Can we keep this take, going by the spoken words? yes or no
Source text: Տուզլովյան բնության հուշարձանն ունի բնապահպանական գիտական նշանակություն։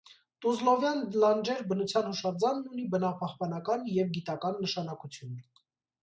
no